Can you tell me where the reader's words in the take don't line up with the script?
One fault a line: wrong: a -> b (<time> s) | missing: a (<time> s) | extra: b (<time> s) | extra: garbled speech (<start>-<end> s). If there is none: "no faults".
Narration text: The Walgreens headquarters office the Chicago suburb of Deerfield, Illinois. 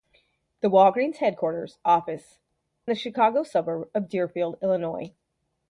no faults